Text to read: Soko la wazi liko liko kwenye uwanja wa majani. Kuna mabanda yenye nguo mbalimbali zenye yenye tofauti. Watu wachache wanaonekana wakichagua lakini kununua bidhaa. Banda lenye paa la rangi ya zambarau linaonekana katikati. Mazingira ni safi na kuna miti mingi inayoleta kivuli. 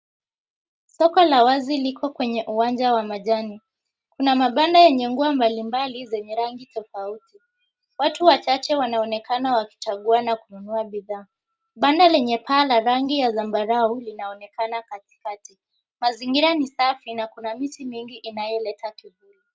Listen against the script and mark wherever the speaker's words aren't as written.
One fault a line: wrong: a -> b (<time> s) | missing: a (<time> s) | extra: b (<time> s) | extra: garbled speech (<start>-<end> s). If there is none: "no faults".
missing: liko (2.1 s)
wrong: yenye -> rangi (6.3 s)
wrong: lakini -> na (10.2 s)